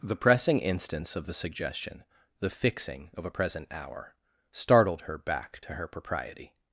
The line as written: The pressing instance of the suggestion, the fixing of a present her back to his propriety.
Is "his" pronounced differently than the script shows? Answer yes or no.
yes